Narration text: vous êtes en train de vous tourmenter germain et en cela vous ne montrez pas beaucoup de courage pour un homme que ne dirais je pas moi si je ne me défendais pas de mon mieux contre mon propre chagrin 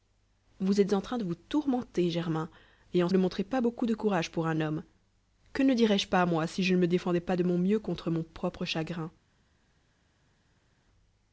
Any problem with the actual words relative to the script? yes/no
yes